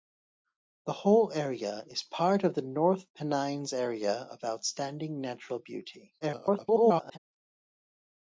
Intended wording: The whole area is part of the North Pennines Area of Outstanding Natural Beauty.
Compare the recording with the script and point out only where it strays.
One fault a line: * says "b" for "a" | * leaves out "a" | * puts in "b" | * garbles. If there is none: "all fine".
* garbles